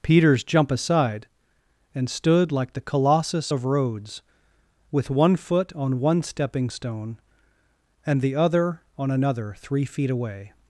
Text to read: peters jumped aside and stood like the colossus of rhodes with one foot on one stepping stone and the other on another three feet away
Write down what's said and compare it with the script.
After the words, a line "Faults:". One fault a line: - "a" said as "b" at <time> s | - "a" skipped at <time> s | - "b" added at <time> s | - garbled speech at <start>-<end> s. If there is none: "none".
peters jump aside and stood like the colossus of rhodes with one foot on one stepping stone and the other on another three feet away
Faults:
- "jumped" said as "jump" at 0.4 s